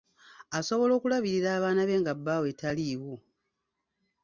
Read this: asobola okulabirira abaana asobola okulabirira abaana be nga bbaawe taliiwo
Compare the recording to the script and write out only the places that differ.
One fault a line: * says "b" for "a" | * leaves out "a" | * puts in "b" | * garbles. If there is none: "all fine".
* leaves out "asobola okulabirira abaana"